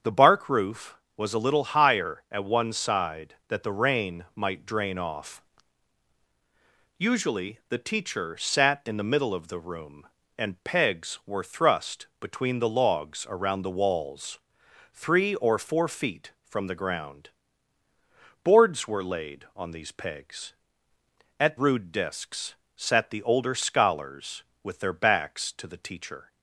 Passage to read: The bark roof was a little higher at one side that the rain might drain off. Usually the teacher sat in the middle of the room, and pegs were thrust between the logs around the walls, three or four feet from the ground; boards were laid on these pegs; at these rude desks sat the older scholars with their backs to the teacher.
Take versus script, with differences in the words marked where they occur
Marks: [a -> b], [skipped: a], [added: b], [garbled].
The bark roof was a little higher at one side that the rain might drain off. Usually the teacher sat in the middle of the room, and pegs were thrust between the logs around the walls, three or four feet from the ground; boards were laid on these pegs; at [skipped: these] rude desks sat the older scholars with their backs to the teacher.